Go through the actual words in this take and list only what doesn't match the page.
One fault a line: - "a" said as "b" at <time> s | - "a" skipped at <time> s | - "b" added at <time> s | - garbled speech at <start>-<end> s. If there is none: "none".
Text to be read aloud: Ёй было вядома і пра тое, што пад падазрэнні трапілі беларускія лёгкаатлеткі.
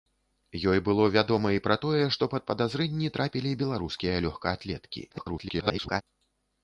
- garbled speech at 5.1-6.0 s